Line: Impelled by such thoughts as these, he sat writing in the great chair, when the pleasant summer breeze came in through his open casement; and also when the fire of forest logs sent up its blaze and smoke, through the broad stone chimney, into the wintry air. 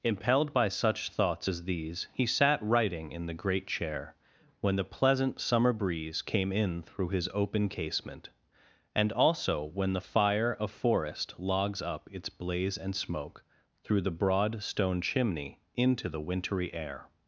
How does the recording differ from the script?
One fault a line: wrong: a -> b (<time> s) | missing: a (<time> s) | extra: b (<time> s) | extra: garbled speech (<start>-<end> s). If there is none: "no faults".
missing: sent (11.8 s)